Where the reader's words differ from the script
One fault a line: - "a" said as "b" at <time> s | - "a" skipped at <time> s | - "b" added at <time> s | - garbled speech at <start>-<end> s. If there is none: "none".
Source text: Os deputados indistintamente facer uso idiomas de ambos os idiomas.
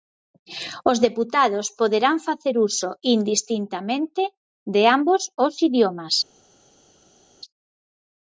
- "indistintamente" said as "poderán" at 1.8 s
- "idiomas" said as "indistintamente" at 3.1 s